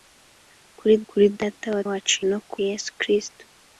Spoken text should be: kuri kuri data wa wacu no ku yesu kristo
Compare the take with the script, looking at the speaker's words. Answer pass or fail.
pass